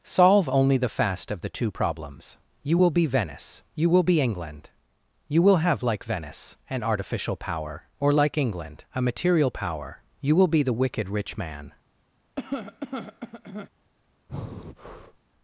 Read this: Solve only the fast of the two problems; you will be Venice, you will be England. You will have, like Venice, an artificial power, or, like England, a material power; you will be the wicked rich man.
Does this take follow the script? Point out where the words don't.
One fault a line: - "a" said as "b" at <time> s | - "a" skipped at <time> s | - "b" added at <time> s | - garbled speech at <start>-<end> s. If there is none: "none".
none